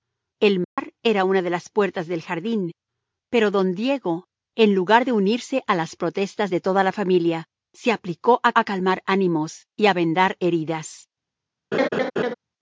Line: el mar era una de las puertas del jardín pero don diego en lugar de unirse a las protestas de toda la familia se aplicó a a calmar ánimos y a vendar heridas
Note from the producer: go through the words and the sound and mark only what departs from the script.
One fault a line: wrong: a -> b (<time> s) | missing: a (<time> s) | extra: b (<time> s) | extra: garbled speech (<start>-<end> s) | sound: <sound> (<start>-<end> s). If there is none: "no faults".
sound: dropout (0.6-0.8 s)
sound: laugh (11.7-12.3 s)